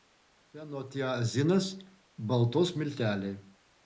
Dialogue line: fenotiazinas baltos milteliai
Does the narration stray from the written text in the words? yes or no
no